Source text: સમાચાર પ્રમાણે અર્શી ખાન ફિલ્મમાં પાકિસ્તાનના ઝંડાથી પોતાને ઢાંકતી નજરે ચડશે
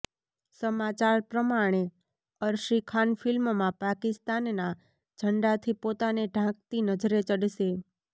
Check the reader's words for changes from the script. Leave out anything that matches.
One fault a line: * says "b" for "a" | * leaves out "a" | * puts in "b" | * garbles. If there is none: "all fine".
all fine